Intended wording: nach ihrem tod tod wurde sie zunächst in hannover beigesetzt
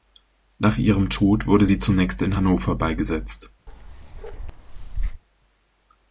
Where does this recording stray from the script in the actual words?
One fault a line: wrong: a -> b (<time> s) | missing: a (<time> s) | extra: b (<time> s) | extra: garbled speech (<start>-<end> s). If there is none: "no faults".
missing: tod (1.4 s)